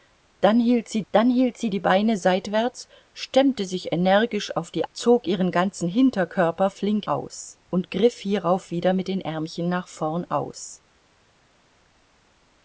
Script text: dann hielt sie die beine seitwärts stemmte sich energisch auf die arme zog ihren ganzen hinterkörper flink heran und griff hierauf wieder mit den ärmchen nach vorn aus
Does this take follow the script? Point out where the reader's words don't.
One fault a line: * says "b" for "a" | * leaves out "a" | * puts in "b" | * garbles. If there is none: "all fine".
* puts in "dann hielt sie"
* leaves out "arme"
* says "aus" for "heran"